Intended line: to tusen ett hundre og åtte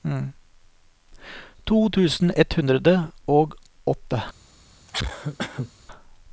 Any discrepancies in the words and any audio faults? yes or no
yes